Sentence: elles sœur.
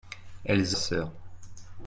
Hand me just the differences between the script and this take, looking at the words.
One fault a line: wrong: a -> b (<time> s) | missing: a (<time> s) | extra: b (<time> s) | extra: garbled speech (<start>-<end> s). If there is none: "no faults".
no faults